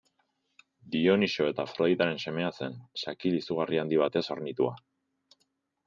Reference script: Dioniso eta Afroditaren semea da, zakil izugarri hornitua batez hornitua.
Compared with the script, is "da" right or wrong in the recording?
wrong